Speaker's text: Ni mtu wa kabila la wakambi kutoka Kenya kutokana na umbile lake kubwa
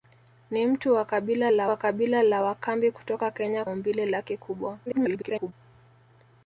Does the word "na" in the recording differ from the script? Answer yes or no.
yes